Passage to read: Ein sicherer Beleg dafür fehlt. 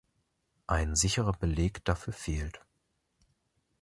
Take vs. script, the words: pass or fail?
pass